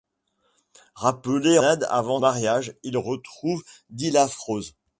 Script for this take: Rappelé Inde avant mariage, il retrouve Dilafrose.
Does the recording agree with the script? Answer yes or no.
yes